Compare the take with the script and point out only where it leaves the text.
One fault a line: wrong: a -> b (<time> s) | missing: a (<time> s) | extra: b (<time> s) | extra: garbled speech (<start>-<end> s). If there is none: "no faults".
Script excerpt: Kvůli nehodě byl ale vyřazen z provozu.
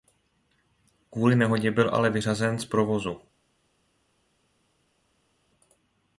no faults